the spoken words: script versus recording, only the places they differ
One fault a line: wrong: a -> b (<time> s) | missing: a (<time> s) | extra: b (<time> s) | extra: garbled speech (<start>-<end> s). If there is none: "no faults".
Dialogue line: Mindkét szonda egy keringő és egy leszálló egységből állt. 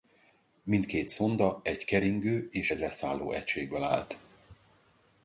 no faults